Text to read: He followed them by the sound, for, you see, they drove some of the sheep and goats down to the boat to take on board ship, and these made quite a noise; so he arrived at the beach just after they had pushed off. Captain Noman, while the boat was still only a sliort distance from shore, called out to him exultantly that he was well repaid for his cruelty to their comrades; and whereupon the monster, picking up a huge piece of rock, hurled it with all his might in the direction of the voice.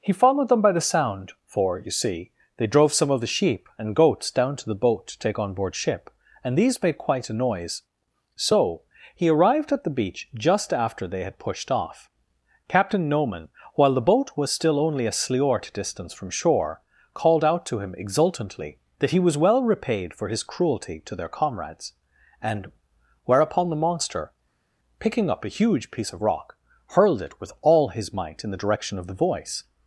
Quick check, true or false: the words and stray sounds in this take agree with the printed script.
true